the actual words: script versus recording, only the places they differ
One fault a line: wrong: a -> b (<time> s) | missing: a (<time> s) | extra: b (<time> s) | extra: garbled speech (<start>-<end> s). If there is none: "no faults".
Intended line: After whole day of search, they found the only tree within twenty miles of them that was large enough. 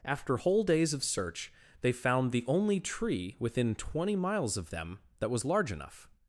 wrong: day -> days (0.6 s)